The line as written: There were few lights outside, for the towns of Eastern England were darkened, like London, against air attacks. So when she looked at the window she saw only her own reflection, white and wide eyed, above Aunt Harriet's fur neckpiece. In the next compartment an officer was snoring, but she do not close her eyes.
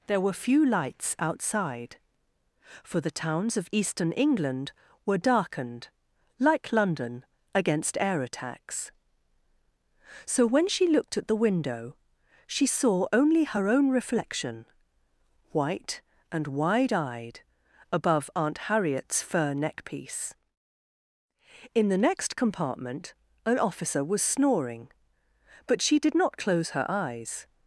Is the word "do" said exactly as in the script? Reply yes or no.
no